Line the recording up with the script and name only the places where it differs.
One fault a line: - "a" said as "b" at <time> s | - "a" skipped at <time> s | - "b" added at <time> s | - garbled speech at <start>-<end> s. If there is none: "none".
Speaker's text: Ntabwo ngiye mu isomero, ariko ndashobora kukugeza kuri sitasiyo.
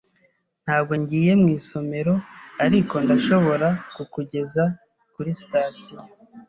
none